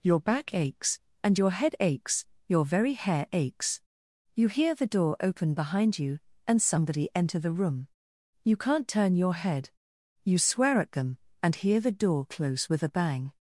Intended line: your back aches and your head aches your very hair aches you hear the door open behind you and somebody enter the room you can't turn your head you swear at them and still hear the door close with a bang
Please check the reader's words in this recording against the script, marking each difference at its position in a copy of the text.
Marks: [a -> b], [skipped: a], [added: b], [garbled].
your back aches and your head aches your very hair aches you hear the door open behind you and somebody enter the room you can't turn your head you swear at them and [skipped: still] hear the door close with a bang